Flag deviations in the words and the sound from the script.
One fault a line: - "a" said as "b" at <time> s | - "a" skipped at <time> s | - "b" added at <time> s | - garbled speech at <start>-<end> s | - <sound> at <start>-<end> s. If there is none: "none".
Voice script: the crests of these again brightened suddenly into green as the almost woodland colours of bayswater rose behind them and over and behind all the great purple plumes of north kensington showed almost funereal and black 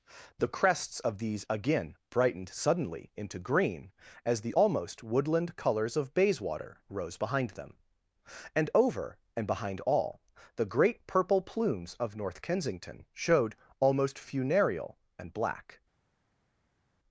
none